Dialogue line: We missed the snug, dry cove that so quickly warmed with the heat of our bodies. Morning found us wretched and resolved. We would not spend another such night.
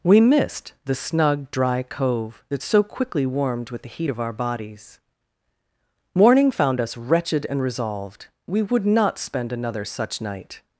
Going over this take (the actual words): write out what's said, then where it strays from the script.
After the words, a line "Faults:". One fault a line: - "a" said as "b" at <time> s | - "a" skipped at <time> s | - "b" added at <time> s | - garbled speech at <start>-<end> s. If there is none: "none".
We missed the snug, dry cove that so quickly warmed with the heat of our bodies. Morning found us wretched and resolved. We would not spend another such night.
Faults:
none